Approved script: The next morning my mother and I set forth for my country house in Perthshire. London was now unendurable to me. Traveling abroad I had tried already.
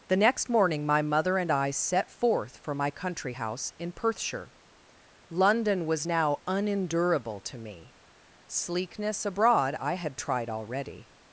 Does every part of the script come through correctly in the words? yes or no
no